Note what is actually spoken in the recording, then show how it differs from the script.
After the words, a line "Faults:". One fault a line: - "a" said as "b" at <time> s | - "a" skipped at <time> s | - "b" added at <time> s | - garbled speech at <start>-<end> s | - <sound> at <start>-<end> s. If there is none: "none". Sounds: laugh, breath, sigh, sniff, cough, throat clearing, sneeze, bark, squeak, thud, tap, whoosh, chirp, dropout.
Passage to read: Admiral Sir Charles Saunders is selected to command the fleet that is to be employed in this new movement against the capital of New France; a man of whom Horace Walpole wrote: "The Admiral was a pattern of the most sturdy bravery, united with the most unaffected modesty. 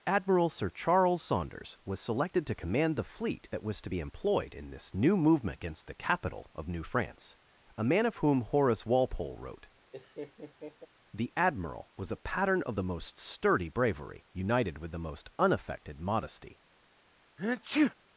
Admiral Sir Charles Saunders was selected to command the fleet that was to be employed in this new movement against the capital of New France; a man of whom Horace Walpole wrote: "The Admiral was a pattern of the most sturdy bravery, united with the most unaffected modesty.
Faults:
- "is" said as "was" at 1.9 s
- "is" said as "was" at 3.6 s
- laugh at 9.9-10.9 s
- sneeze at 17.4-17.9 s